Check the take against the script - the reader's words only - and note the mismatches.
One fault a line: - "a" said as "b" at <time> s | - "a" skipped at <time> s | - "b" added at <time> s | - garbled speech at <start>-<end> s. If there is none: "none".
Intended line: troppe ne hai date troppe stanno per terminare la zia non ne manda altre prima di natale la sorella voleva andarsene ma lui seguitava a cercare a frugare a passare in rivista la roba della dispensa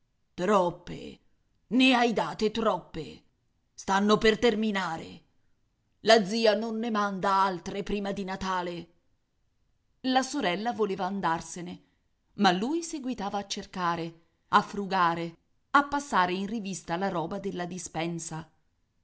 none